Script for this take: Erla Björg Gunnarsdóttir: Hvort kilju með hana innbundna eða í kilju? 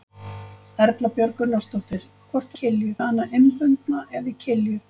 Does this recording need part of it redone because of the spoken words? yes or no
no